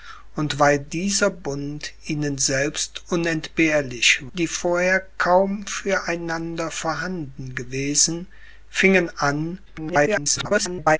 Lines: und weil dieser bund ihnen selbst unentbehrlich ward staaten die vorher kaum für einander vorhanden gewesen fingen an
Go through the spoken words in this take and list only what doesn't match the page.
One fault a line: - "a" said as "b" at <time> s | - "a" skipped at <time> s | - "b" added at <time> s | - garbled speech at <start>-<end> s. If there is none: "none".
- "ward staaten" skipped at 4.3 s
- garbled speech at 9.7-11.0 s